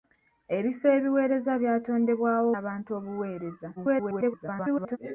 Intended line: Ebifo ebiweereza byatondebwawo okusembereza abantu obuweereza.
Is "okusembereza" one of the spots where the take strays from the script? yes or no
yes